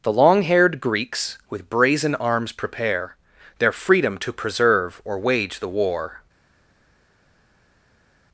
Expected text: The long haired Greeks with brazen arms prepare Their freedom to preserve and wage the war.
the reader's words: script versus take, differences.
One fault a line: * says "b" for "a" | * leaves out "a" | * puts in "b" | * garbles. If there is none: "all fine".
* says "or" for "and"